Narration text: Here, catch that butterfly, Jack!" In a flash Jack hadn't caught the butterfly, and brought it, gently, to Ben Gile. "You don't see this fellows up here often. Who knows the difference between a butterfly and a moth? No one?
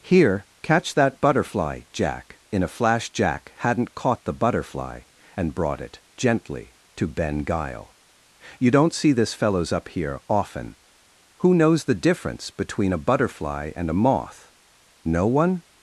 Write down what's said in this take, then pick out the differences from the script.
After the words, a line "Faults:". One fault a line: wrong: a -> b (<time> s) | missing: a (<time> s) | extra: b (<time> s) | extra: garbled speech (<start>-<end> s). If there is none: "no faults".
Here, catch that butterfly, Jack!" In a flash Jack hadn't caught the butterfly, and brought it, gently, to Ben Gile. "You don't see this fellows up here often. Who knows the difference between a butterfly and a moth? No one?
Faults:
no faults